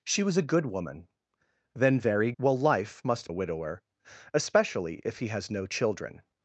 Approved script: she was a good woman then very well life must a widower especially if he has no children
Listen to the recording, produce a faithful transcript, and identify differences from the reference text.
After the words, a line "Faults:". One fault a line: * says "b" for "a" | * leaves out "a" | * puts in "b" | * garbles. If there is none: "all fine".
she was a good woman then very well life must a widower especially if he has no children
Faults:
all fine